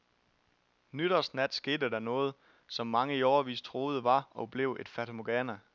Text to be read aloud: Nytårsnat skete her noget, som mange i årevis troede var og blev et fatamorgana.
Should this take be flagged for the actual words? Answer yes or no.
yes